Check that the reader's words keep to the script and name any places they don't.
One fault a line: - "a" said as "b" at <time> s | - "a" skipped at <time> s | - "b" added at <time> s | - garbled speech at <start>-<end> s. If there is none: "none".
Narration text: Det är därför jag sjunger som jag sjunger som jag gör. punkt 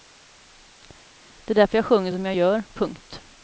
- "sjunger som jag" skipped at 2.3 s